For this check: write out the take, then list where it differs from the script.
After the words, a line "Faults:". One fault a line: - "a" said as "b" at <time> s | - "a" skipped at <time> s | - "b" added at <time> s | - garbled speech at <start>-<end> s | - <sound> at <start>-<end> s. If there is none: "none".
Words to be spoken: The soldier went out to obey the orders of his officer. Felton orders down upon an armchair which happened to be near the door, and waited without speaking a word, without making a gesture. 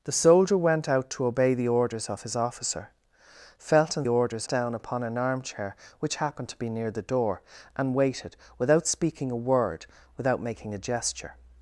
The soldier went out to obey the orders of his officer. Felton orders down upon an armchair which happened to be near the door, and waited without speaking a word, without making a gesture.
Faults:
none